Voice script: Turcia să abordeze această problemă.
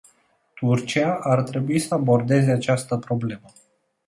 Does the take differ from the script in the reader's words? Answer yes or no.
yes